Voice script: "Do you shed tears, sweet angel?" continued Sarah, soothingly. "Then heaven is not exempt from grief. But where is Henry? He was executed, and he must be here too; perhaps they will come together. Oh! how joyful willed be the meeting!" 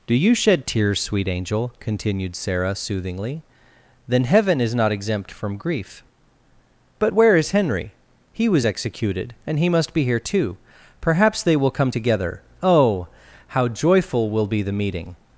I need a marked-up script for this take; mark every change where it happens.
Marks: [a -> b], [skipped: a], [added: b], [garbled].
"Do you shed tears, sweet angel?" continued Sarah, soothingly. "Then heaven is not exempt from grief. But where is Henry? He was executed, and he must be here too; perhaps they will come together. Oh! how joyful [willed -> will] be the meeting!"